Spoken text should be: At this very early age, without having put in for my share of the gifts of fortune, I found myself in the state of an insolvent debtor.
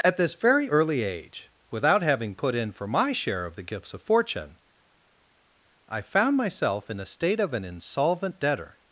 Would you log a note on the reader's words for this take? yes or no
yes